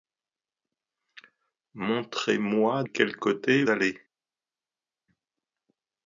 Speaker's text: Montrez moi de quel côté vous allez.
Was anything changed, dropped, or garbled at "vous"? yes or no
yes